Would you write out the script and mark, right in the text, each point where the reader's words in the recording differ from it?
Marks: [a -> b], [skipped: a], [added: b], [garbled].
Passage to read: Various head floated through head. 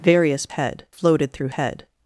Various head floated through head.